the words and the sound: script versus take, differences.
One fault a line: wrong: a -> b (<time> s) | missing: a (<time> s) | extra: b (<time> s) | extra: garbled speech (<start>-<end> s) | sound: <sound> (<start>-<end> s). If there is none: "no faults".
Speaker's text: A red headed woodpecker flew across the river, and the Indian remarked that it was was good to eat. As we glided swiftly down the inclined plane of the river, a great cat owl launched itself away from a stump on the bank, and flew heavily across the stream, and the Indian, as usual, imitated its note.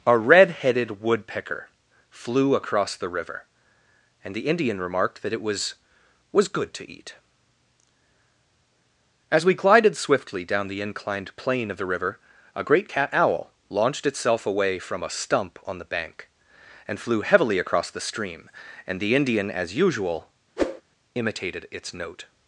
sound: whoosh (20.6-20.8 s)